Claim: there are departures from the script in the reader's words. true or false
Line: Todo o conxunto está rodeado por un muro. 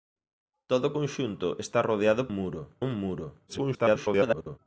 true